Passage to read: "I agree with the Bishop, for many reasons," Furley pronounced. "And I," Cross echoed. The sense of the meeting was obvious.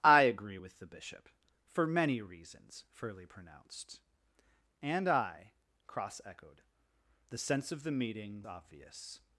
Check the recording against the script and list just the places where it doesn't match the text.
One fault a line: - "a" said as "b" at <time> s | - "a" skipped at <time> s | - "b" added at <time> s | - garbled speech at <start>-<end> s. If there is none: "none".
- "was" skipped at 8.5 s